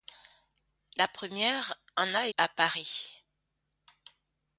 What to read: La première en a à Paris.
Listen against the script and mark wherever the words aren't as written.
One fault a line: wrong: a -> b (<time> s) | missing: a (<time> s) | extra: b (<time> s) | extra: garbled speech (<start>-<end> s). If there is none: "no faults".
no faults